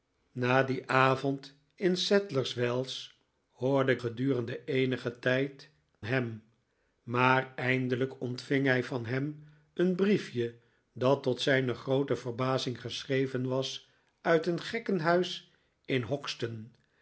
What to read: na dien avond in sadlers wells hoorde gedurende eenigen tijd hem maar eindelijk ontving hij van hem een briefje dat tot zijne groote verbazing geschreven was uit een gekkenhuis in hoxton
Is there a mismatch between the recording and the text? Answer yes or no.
no